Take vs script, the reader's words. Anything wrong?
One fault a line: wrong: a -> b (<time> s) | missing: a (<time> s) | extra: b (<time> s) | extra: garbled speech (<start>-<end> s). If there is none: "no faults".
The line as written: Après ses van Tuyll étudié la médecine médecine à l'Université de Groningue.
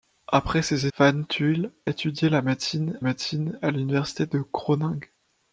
no faults